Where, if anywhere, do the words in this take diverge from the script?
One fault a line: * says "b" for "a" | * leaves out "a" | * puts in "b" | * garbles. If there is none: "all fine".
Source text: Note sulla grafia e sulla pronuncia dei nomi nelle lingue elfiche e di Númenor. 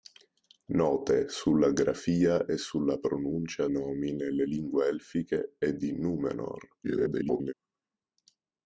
* leaves out "dei"
* garbles